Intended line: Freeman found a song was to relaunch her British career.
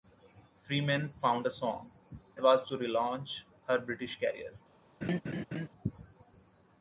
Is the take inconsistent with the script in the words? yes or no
no